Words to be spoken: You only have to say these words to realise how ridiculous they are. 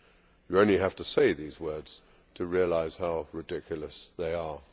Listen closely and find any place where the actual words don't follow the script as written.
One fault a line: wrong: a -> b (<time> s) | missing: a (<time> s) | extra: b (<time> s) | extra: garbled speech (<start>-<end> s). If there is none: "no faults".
no faults